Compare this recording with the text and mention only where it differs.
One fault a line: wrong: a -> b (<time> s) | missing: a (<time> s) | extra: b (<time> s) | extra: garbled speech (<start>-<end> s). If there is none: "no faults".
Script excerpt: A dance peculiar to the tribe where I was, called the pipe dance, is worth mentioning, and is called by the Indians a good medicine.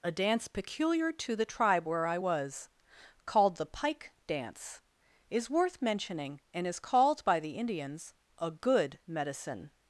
wrong: pipe -> pike (3.6 s)